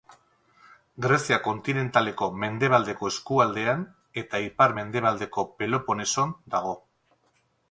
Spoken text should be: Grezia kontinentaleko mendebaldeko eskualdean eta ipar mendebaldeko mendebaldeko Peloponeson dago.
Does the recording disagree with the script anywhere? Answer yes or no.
yes